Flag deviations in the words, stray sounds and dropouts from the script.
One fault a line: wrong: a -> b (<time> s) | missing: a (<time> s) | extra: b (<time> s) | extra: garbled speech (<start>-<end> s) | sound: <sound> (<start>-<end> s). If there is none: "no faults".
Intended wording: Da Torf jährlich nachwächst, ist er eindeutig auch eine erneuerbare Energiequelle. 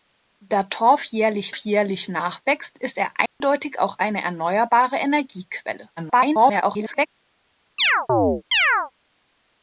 extra: jährlich (1.6 s)
sound: dropout (3.3-3.4 s)
extra: garbled speech (6.0-7.1 s)
sound: chirp (7.8-8.9 s)